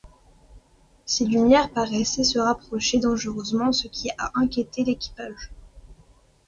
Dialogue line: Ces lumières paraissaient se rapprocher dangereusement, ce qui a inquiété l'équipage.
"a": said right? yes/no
yes